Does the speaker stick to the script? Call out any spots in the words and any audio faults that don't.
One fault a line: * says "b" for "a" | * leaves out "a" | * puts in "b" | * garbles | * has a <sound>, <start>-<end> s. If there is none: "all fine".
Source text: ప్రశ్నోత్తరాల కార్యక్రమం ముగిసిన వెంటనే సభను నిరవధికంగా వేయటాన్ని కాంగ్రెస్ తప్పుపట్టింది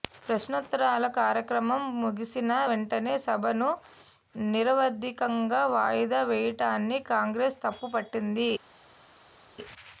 * puts in "వాయిదా"